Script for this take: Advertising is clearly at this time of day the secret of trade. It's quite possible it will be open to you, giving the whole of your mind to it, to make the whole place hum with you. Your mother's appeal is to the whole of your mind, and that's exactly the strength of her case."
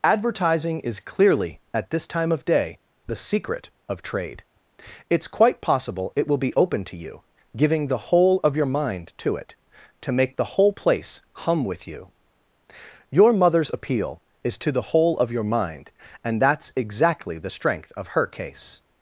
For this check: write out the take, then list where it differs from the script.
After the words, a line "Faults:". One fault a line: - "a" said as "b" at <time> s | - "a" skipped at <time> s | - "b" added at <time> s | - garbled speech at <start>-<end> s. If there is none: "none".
Advertising is clearly at this time of day the secret of trade. It's quite possible it will be open to you, giving the whole of your mind to it, to make the whole place hum with you. Your mother's appeal is to the whole of your mind, and that's exactly the strength of her case."
Faults:
none